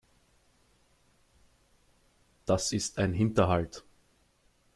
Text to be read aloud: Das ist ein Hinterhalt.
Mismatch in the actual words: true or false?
false